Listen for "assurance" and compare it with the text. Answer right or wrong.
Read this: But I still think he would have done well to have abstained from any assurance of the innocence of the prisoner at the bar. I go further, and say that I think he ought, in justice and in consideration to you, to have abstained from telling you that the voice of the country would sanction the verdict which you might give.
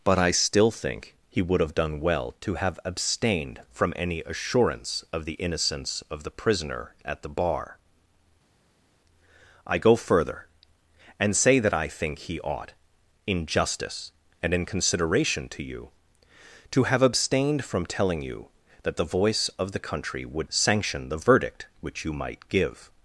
right